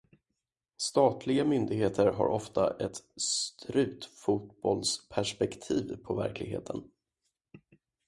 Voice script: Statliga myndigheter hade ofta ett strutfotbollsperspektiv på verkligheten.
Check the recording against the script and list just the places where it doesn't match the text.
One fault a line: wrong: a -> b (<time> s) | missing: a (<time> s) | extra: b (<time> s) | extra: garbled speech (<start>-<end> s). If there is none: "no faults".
wrong: hade -> har (2.1 s)